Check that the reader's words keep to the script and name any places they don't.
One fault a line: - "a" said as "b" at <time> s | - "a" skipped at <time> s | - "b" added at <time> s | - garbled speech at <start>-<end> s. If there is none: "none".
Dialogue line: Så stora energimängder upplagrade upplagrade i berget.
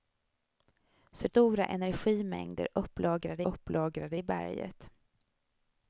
none